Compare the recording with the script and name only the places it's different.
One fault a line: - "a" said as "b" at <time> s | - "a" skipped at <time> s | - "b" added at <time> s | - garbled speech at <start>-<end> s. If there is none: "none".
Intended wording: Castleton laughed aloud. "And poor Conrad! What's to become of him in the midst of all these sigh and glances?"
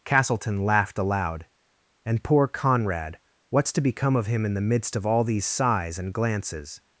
- "sigh" said as "sighs" at 5.5 s